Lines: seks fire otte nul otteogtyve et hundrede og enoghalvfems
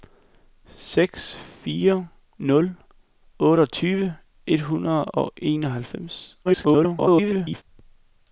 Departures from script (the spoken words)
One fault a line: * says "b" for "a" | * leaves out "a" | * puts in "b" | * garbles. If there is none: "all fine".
* leaves out "otte"
* garbles